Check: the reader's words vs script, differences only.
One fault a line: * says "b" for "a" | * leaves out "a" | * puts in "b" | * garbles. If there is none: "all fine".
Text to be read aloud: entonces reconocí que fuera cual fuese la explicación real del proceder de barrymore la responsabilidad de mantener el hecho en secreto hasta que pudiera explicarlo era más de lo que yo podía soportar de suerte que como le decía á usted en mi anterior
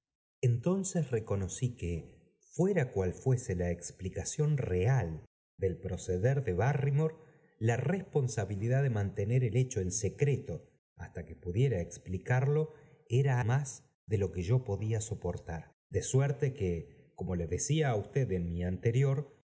all fine